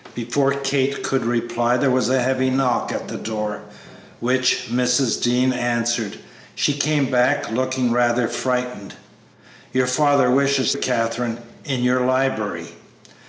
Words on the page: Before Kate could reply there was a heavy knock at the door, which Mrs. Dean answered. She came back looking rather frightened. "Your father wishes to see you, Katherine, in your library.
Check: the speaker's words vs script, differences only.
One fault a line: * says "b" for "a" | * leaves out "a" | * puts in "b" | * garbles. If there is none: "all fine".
* leaves out "to see you"